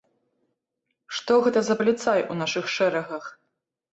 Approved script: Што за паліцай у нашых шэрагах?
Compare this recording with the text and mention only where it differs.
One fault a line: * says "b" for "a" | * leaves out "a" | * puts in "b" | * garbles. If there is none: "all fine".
* puts in "гэта"